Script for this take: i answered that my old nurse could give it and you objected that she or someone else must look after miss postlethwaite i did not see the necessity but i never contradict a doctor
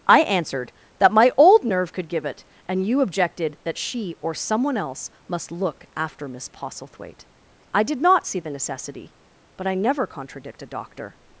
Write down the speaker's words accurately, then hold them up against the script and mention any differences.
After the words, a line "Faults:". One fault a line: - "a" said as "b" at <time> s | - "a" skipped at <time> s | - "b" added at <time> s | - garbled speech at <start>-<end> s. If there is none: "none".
i answered that my old nerve could give it and you objected that she or someone else must look after miss postlethwaite i did not see the necessity but i never contradict a doctor
Faults:
- "nurse" said as "nerve" at 1.6 s